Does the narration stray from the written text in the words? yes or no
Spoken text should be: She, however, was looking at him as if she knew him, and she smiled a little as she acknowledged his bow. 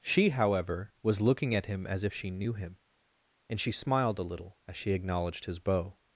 no